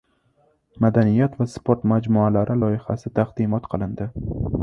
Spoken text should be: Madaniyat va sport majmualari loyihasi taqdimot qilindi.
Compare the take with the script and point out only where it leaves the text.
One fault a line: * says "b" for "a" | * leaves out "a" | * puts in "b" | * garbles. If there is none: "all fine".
all fine